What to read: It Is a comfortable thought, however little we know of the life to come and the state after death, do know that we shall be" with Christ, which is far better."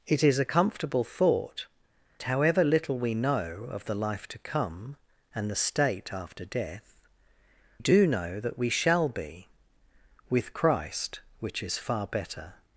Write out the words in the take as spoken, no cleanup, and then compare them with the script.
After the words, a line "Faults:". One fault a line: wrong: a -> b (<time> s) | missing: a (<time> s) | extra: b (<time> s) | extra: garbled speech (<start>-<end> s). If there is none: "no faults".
It Is a comfortable thought, however little we know of the life to come and the state after death, do know that we shall be" with Christ, which is far better."
Faults:
no faults